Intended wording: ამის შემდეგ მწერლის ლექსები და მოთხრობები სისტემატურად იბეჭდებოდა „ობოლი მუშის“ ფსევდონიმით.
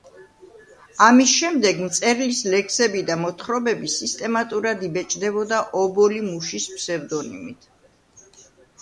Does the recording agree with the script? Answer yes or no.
yes